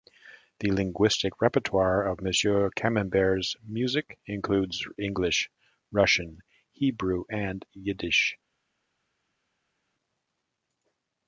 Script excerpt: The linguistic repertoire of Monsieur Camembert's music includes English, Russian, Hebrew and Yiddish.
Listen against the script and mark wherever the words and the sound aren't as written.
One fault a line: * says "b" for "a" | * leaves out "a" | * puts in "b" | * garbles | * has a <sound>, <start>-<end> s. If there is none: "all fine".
all fine